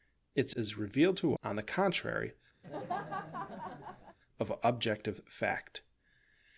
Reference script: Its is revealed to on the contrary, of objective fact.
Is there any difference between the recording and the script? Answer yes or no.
no